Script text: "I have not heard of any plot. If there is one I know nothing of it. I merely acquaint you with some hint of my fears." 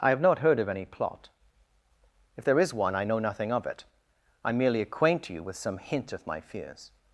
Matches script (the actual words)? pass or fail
pass